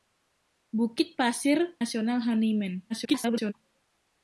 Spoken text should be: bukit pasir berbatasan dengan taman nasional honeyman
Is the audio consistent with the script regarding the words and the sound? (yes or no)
no